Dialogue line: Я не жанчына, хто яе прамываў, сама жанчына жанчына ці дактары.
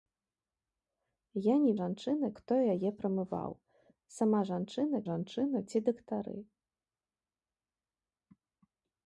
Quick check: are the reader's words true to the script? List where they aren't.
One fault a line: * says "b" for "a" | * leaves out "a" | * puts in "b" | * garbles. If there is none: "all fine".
all fine